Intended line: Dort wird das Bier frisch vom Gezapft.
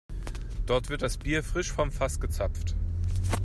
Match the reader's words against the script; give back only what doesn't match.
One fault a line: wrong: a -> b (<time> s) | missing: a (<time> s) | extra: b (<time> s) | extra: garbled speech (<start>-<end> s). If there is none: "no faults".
extra: Fass (1.9 s)